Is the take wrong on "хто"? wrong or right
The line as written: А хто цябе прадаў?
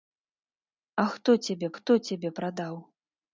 right